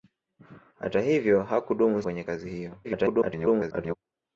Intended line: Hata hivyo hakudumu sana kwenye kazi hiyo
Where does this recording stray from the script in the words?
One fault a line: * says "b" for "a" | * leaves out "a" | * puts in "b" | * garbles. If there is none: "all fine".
* leaves out "sana"
* garbles